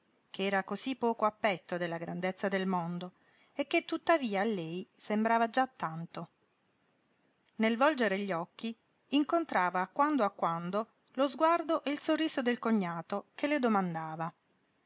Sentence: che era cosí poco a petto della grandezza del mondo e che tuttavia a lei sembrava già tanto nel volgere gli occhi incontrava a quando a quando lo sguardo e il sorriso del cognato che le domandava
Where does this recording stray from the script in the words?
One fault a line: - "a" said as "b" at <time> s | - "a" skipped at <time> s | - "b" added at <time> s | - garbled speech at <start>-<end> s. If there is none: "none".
none